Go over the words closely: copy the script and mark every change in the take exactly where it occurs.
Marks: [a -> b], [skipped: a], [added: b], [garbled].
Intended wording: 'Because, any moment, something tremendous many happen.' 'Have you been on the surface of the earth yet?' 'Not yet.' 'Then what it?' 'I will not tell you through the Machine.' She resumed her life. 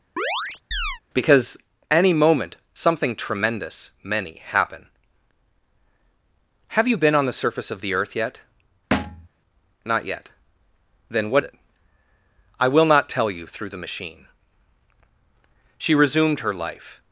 'Because, any moment, something tremendous many happen.' 'Have you been on the surface of the earth yet?' 'Not yet.' 'Then what it?' 'I will not tell you through the Machine.' She resumed her life.